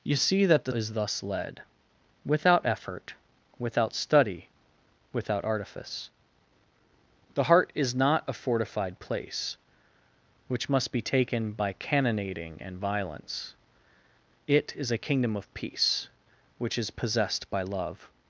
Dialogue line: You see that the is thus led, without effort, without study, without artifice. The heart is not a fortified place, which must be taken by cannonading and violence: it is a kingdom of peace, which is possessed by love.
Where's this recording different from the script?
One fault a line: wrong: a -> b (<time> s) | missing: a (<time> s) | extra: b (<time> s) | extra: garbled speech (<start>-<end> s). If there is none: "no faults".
no faults